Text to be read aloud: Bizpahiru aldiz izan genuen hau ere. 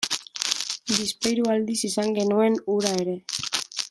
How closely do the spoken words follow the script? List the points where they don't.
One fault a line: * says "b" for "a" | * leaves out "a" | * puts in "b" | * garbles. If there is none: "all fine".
* says "hura" for "hau"